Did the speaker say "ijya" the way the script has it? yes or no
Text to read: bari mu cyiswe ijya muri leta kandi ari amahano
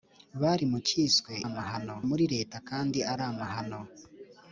no